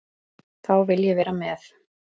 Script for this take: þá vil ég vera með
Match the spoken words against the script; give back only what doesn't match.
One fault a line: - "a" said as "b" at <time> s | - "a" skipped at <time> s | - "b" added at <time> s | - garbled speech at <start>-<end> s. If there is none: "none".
none